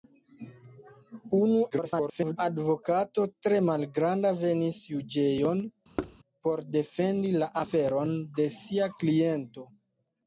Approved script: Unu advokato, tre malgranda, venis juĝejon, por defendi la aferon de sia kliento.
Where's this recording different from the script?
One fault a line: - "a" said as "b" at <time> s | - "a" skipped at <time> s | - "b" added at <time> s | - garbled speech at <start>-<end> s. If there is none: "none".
- garbled speech at 1.7-2.4 s